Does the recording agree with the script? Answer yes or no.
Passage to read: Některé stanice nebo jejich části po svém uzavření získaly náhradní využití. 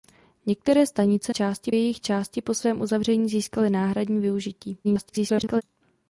no